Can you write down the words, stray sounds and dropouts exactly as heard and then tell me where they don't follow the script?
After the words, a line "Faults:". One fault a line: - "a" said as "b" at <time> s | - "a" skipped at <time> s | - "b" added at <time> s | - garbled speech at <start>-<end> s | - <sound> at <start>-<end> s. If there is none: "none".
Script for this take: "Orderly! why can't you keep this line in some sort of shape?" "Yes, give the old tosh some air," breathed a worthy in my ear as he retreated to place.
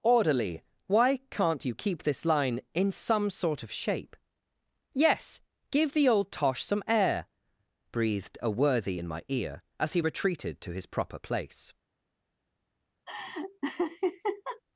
"Orderly! why can't you keep this line in some sort of shape?" "Yes, give the old tosh some air," breathed a worthy in my ear as he retreated to his proper place.
Faults:
- "his proper" added at 10.7 s
- laugh at 13.1-14.6 s